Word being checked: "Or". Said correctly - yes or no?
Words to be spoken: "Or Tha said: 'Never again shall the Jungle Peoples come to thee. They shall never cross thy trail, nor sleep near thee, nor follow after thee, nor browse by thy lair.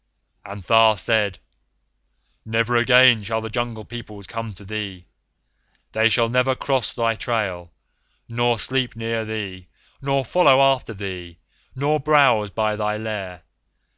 no